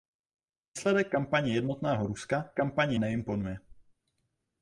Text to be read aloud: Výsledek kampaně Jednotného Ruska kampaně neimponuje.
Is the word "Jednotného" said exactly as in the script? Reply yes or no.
yes